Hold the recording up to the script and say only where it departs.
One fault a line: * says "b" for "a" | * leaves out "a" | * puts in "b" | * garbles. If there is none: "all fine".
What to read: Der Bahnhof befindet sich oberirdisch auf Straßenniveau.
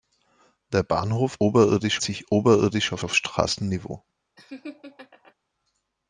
* says "oberirdisch" for "befindet"
* puts in "auf"